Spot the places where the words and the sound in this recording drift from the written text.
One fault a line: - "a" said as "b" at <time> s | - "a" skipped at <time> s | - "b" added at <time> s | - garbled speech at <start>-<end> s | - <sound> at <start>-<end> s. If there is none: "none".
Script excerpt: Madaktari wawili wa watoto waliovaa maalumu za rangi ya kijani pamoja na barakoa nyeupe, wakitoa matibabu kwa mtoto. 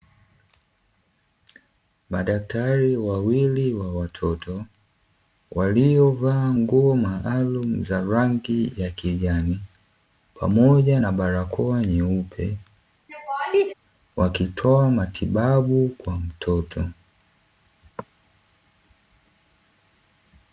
- "nguo" added at 6.5 s
- laugh at 13.1-13.7 s